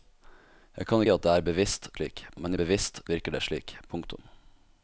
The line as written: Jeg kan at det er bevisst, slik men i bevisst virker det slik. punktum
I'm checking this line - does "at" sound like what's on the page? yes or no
yes